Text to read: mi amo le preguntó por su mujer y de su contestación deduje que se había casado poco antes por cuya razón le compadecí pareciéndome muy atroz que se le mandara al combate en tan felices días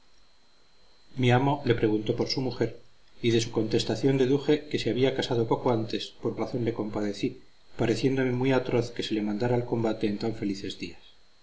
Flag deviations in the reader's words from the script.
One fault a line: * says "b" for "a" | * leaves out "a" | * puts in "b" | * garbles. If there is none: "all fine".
* leaves out "cuya"